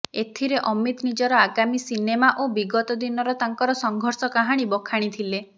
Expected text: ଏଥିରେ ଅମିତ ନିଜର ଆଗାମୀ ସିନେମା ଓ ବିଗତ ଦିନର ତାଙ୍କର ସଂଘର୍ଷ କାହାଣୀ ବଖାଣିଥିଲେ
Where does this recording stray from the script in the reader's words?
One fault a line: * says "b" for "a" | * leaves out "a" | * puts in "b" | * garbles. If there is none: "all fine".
all fine